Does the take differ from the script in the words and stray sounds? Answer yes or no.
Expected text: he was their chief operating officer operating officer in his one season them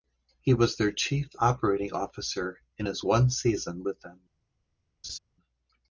yes